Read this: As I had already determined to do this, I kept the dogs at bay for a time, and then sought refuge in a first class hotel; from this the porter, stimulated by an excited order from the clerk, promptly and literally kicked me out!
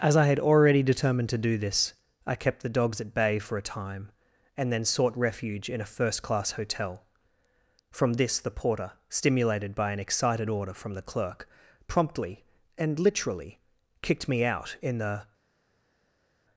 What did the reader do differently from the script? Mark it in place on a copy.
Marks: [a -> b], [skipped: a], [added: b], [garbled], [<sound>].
As I had already determined to do this, I kept the dogs at bay for a time, and then sought refuge in a first class hotel; from this the porter, stimulated by an excited order from the clerk, promptly and literally kicked me out! [added: In the]